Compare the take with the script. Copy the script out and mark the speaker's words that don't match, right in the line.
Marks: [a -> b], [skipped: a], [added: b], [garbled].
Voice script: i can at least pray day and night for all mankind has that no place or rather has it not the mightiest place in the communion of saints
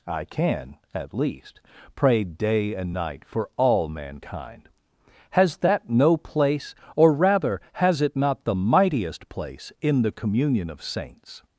i can at least pray day and night for all mankind has that no place or rather has it not the mightiest place in the communion of saints